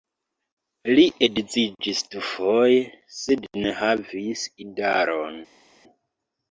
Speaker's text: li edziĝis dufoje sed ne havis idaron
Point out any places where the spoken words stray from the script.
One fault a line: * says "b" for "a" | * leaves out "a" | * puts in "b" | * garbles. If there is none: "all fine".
all fine